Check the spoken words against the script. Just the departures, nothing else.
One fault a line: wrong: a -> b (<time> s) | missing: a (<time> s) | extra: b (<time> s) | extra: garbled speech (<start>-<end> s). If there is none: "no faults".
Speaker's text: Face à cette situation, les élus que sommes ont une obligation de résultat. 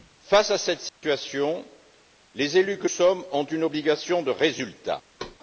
no faults